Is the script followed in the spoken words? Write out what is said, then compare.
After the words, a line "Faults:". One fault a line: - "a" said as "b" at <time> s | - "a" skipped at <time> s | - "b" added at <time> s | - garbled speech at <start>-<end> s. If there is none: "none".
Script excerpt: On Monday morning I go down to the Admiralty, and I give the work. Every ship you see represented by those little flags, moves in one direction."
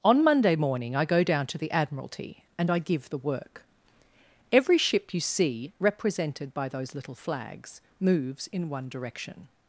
On Monday morning I go down to the Admiralty, and I give the work. Every ship you see represented by those little flags, moves in one direction."
Faults:
none